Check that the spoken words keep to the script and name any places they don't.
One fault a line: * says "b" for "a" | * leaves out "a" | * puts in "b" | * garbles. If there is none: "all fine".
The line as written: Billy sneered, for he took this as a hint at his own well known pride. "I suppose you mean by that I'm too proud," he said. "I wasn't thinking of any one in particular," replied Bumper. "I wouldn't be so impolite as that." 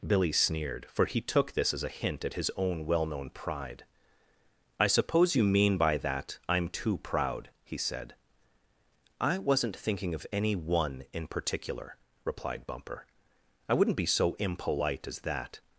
all fine